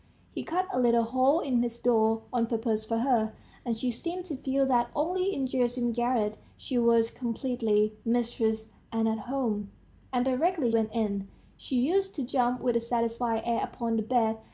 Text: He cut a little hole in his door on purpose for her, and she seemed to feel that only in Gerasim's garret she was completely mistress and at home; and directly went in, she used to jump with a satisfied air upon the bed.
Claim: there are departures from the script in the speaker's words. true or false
false